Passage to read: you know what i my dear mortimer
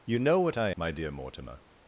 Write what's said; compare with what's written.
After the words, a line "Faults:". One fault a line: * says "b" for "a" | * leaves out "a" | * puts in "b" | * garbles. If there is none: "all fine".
you know what i my dear mortimer
Faults:
all fine